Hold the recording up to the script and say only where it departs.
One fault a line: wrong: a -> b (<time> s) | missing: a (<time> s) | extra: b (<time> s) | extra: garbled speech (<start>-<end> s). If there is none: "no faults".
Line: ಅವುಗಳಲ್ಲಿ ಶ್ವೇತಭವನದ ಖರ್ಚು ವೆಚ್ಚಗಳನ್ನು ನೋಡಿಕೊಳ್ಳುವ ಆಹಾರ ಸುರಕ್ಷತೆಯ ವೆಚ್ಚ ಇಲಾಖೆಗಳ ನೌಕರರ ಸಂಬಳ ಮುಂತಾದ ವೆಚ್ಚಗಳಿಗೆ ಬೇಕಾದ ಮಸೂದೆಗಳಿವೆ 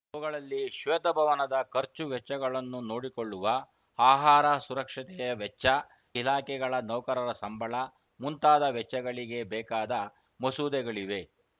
no faults